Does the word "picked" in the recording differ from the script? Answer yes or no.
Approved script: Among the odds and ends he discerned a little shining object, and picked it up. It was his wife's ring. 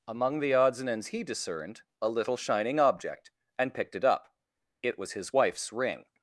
no